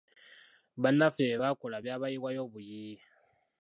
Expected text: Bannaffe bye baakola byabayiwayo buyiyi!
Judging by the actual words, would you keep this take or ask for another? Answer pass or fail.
pass